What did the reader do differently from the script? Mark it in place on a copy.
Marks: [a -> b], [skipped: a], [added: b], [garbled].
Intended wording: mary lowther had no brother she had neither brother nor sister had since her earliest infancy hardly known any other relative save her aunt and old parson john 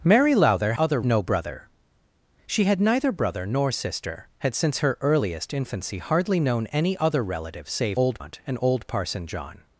mary lowther [had -> other] no brother she had neither brother nor sister had since her earliest infancy hardly known any other relative save [her -> old] aunt and old parson john